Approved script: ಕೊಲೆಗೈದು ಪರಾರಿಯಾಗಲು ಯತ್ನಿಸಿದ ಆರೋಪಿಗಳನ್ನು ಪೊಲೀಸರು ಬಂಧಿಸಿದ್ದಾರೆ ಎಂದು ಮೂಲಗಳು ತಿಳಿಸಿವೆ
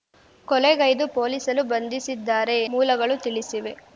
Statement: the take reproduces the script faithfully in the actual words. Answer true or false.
false